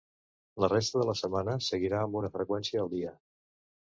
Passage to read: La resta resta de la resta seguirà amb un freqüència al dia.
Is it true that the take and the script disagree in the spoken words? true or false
true